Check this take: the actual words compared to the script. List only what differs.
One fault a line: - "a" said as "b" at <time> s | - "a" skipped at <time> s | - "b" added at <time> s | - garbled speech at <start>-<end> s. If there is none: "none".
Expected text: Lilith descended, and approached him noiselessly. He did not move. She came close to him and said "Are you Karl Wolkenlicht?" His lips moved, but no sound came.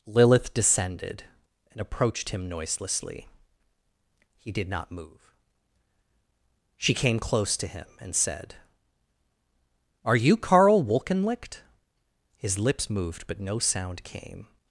none